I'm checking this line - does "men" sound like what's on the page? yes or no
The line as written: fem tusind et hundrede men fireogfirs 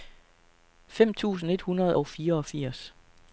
no